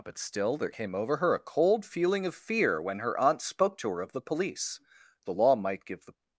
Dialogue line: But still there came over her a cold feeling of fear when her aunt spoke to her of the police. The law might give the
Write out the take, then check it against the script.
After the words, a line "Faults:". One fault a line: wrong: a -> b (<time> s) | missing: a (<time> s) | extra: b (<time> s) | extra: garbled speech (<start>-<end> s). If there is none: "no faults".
But still there came over her a cold feeling of fear when her aunt spoke to her of the police. The law might give the
Faults:
no faults